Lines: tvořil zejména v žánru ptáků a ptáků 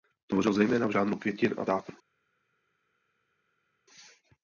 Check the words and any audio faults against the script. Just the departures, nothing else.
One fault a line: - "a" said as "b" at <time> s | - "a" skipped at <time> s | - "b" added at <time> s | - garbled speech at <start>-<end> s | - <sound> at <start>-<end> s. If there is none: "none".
- "ptáků" said as "květin" at 1.2 s